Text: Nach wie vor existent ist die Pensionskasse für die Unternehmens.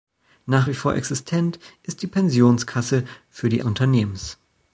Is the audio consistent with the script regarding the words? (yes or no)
yes